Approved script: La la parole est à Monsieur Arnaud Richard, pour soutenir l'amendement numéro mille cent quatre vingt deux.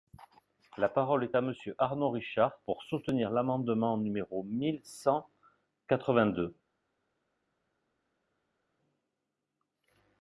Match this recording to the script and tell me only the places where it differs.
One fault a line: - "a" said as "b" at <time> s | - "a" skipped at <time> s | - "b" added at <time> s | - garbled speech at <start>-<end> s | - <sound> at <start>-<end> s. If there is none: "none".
- "la" skipped at 0.9 s